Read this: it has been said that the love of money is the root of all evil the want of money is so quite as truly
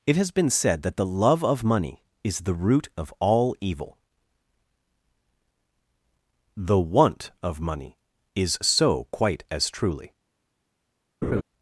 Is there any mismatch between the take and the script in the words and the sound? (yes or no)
yes